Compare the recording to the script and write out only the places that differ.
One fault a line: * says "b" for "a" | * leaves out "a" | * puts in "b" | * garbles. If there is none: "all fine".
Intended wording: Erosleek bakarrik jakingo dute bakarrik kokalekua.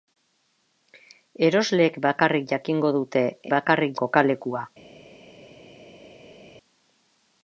all fine